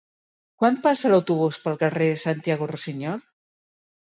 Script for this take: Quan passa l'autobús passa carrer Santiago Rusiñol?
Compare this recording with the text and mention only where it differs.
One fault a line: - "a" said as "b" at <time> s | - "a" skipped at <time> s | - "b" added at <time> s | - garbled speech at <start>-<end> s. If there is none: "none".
- "passa" said as "pel" at 1.7 s